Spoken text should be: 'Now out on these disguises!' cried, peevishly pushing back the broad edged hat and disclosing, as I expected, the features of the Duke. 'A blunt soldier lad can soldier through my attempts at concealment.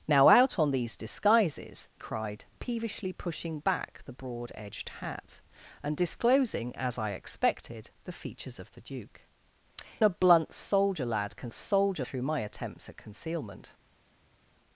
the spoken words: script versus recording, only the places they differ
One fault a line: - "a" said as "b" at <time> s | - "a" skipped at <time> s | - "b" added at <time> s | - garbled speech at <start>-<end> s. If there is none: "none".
none